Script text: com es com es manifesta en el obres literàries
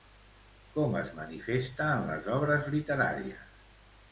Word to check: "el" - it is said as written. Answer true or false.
false